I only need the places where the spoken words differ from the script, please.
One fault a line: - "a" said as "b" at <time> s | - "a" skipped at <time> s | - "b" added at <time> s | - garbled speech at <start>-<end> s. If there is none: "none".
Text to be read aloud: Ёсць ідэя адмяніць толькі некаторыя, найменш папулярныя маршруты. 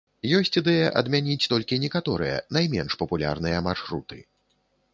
none